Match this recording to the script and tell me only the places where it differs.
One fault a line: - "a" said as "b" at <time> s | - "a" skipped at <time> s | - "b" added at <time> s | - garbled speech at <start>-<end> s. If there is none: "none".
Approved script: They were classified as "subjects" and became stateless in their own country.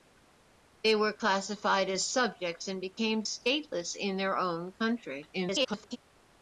- garbled speech at 5.3-6.0 s